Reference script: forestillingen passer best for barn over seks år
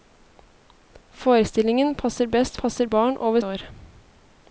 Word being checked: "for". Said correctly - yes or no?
no